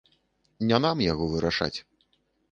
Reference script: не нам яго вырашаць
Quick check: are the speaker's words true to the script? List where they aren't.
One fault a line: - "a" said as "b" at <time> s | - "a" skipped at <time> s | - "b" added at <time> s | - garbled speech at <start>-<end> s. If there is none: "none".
none